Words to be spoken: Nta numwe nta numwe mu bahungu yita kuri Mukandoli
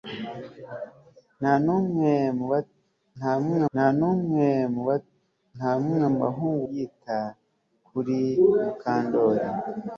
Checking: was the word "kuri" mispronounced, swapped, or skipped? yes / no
no